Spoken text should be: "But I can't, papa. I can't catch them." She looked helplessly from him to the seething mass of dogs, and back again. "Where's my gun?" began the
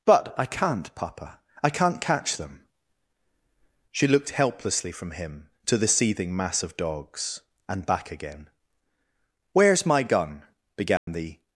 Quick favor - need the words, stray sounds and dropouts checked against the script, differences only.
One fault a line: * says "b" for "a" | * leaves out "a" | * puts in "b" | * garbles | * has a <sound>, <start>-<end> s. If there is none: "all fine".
* has a dropout, 11.0-11.1 s